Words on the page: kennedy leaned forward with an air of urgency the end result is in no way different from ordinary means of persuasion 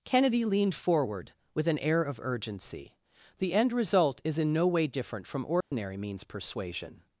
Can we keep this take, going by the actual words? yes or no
no